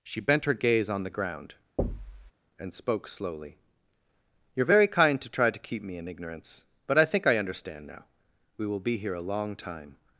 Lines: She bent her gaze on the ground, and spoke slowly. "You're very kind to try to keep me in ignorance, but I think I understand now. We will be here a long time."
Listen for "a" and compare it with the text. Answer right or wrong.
right